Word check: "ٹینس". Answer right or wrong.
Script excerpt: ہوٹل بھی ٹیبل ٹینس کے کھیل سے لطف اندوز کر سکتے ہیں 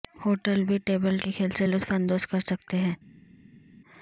wrong